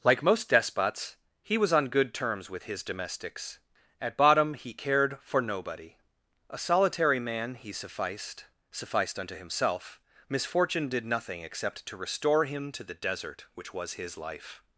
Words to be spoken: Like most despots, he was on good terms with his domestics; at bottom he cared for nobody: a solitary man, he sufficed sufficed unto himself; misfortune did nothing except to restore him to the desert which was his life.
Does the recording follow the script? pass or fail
pass